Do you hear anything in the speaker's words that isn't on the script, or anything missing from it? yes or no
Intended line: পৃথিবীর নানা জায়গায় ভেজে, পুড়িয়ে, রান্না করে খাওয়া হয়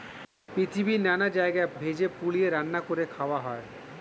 no